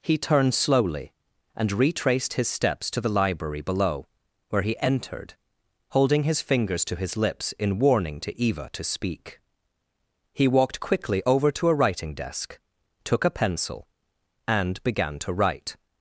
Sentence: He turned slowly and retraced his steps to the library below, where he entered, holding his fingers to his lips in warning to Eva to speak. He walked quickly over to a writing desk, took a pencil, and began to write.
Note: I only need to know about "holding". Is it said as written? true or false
true